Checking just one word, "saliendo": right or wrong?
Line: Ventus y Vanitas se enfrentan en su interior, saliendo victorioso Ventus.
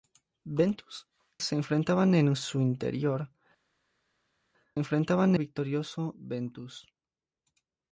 wrong